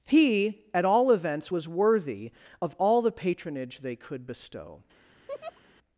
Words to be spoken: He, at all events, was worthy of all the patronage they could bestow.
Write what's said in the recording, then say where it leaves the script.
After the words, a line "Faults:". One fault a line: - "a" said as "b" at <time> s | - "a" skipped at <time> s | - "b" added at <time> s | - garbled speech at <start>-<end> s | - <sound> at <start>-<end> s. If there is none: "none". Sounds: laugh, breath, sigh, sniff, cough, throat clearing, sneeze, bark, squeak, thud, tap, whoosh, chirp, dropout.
He, at all events, was worthy of all the patronage they could bestow.
Faults:
- laugh at 5.3-5.6 s